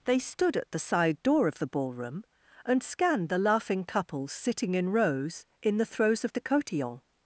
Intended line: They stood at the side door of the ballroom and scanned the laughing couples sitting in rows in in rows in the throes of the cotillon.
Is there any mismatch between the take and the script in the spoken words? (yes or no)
yes